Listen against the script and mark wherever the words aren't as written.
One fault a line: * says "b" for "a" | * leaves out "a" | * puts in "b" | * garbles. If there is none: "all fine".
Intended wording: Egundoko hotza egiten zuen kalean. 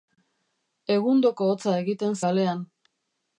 * leaves out "zuen"